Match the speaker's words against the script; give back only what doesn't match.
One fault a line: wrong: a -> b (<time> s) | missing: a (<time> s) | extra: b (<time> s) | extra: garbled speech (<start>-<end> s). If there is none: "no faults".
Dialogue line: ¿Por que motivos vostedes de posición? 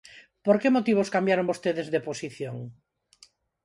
extra: cambiaron (1.1 s)